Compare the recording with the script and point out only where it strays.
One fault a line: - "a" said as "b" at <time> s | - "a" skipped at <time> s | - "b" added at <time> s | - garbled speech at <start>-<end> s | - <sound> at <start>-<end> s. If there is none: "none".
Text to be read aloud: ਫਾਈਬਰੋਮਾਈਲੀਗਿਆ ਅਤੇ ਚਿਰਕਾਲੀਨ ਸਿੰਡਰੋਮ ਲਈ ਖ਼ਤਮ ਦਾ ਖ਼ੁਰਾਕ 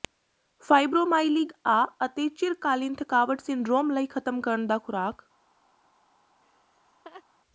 - "ਥਕਾਵਟ" added at 2.9 s
- "ਕਰਨ" added at 4.4 s
- laugh at 6.4-7.2 s